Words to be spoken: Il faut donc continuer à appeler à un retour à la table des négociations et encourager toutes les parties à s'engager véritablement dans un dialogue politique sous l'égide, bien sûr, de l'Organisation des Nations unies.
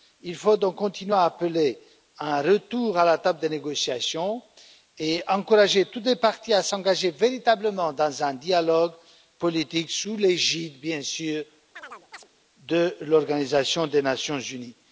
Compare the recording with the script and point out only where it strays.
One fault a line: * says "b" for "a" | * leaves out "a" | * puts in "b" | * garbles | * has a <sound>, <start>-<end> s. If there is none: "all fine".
* has a chirp, 11.8-12.3 s